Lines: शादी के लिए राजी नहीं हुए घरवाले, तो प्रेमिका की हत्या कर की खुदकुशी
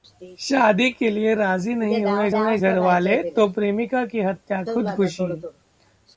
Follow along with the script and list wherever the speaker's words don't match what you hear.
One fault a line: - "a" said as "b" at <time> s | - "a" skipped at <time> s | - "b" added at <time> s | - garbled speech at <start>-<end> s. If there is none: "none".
- "हुए" added at 2.3 s
- "कर की" skipped at 4.6 s